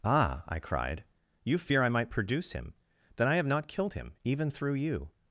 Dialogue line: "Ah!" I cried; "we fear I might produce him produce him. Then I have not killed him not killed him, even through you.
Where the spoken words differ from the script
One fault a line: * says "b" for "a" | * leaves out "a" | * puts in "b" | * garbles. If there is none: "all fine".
* says "you" for "we"
* leaves out "produce him"
* leaves out "not killed him"